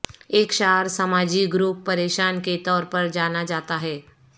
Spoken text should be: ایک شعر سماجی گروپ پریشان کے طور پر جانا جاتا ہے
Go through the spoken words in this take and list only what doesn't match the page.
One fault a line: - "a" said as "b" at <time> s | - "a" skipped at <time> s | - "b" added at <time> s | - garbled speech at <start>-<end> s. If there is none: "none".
none